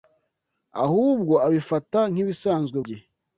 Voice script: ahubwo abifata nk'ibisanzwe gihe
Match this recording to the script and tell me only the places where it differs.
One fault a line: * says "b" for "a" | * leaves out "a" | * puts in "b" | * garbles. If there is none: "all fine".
all fine